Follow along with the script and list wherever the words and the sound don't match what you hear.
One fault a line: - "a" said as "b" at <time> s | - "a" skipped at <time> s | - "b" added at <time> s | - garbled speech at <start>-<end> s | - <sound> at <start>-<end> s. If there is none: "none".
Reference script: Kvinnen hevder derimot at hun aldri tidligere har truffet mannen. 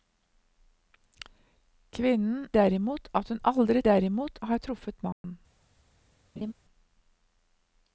- "hevder" skipped at 2.5 s
- "tidligere" said as "derimot" at 3.9 s
- dropout at 5.1-5.2 s
- laugh at 6.4-6.5 s